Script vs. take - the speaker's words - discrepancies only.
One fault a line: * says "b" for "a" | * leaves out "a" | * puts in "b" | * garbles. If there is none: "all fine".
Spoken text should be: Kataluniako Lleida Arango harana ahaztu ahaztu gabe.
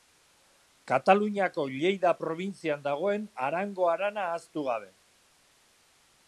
* puts in "probintzian dagoen"
* leaves out "ahaztu"